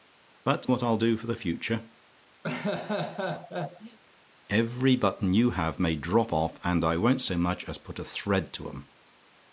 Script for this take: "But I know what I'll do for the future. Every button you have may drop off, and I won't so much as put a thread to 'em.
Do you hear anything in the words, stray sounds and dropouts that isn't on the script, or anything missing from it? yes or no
yes